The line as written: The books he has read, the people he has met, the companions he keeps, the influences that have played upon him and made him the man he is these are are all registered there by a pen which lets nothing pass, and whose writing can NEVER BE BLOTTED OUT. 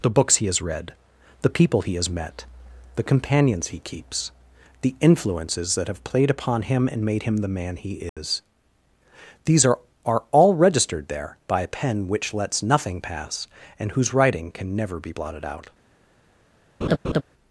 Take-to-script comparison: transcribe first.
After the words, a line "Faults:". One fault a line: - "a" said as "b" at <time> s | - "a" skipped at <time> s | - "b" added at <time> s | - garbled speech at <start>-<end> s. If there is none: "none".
The books he has read, the people he has met, the companions he keeps, the influences that have played upon him and made him the man he is these are are all registered there by a pen which lets nothing pass, and whose writing can NEVER BE BLOTTED OUT.
Faults:
none